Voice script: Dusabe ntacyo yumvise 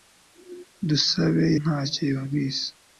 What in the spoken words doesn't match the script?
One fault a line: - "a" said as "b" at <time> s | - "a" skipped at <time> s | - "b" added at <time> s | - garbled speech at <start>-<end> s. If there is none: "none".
none